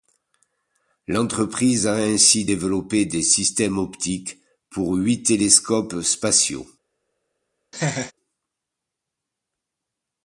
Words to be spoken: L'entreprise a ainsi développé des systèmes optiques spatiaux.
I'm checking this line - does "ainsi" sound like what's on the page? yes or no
yes